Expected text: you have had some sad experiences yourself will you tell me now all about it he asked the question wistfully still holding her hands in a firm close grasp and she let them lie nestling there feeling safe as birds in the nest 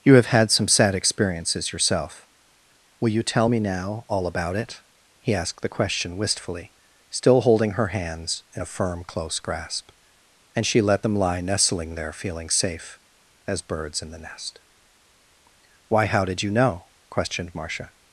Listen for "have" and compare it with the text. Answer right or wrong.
right